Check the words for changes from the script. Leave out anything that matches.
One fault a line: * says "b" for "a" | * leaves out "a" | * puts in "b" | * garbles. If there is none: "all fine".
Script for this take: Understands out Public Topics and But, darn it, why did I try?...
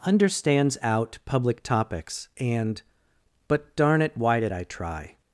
all fine